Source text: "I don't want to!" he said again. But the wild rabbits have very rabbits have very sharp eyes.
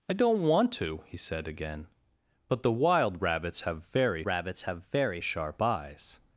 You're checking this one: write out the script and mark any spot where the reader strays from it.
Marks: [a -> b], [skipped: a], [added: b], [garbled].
"I don't want to!" he said again. But the wild rabbits have very rabbits have very sharp eyes.